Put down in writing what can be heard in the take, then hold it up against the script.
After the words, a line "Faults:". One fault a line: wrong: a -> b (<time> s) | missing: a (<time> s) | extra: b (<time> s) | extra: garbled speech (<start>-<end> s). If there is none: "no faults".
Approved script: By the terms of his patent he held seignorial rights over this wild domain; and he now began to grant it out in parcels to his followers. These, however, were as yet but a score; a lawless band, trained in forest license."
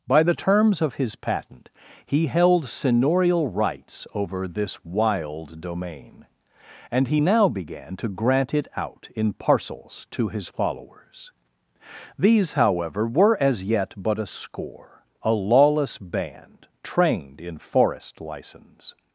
By the terms of his patent he held seignorial rights over this wild domain; and he now began to grant it out in parcels to his followers. These, however, were as yet but a score; a lawless band, trained in forest license."
Faults:
no faults